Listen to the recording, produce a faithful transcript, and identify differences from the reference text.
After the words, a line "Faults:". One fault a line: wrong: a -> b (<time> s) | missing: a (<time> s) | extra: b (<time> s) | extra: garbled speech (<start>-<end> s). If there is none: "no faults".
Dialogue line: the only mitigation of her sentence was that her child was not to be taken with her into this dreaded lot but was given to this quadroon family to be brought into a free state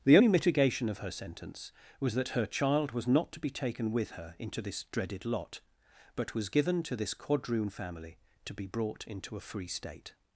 the only mitigation of her sentence was that her child was not to be taken with her into this dreaded lot but was given to this quadroon family to be brought into a free state
Faults:
no faults